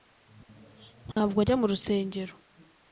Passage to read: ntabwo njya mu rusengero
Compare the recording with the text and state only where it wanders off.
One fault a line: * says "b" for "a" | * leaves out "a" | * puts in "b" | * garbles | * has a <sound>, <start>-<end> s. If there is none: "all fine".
* has a dropout, 1.1-1.2 s